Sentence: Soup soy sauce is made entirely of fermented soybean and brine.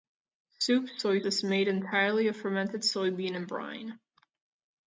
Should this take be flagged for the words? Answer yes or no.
yes